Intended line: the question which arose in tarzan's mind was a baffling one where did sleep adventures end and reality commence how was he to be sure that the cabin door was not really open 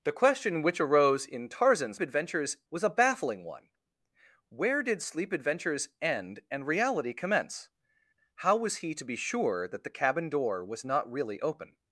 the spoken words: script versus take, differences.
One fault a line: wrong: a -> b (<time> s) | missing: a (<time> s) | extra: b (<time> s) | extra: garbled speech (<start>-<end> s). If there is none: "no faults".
wrong: mind -> adventures (2.0 s)